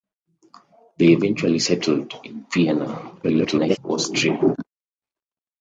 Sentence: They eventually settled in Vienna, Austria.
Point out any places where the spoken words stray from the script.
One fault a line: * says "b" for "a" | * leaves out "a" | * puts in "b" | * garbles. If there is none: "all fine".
* garbles